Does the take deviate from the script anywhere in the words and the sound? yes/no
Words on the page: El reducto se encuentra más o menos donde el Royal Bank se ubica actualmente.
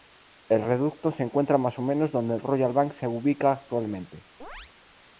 yes